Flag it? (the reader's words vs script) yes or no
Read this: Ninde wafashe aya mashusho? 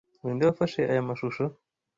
no